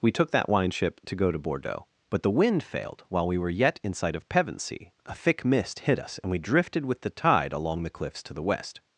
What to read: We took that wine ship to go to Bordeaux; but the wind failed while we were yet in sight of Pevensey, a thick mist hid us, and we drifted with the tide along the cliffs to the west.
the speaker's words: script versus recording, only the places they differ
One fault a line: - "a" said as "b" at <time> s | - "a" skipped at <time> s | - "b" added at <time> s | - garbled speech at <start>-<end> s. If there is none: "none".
none